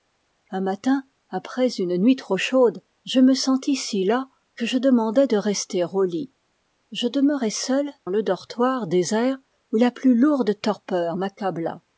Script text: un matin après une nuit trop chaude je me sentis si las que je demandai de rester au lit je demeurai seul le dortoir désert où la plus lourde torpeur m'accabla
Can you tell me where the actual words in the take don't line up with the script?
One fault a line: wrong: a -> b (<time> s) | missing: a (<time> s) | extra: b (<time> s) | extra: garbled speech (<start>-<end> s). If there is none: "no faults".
no faults